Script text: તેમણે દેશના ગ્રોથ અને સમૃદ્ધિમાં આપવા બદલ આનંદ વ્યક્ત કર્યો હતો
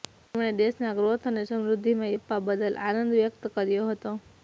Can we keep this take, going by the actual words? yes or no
yes